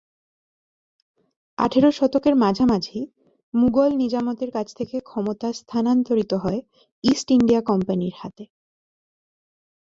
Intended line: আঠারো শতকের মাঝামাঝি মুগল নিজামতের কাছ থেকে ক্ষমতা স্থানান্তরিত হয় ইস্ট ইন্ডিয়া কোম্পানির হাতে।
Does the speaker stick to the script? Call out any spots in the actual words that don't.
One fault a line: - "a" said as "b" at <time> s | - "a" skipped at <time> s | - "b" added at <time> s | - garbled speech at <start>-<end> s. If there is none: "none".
none